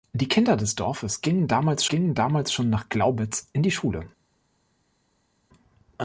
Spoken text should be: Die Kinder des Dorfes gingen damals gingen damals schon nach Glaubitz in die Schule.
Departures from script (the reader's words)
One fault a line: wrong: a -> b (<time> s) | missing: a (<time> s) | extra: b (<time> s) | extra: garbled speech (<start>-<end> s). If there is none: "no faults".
no faults